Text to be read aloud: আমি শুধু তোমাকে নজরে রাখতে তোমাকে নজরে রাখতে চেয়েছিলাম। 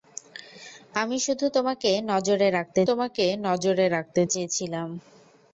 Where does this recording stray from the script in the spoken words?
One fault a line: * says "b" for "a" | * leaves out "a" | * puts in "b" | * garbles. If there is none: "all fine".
all fine